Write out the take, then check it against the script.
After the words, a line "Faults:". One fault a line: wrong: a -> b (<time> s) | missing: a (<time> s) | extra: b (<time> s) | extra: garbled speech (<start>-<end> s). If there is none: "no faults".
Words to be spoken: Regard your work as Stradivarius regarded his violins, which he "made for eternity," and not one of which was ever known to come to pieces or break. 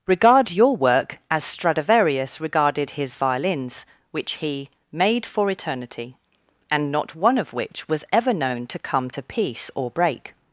Regard your work as Stradivarius regarded his violins, which he "made for eternity," and not one of which was ever known to come to piece or break.
Faults:
wrong: pieces -> piece (9.2 s)